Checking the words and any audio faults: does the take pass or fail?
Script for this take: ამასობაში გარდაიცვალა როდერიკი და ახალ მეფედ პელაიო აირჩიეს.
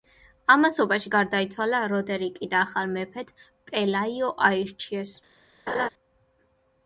fail